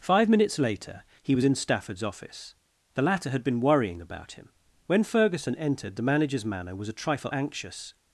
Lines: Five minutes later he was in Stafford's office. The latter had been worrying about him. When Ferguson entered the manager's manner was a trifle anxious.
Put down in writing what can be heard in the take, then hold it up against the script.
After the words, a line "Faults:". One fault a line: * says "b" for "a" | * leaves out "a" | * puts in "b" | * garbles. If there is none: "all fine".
Five minutes later he was in Stafford's office. The latter had been worrying about him. When Ferguson entered the manager's manner was a trifle anxious.
Faults:
all fine